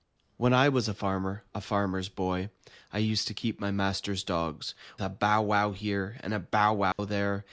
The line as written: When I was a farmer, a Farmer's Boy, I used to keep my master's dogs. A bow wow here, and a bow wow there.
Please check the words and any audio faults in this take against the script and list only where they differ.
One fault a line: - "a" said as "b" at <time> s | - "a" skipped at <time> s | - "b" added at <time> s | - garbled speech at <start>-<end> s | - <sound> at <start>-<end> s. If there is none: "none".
- dropout at 6.9-7.0 s